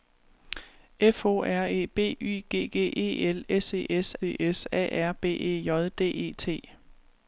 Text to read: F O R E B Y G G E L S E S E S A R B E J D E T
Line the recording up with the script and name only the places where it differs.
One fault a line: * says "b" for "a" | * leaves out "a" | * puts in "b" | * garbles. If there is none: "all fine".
all fine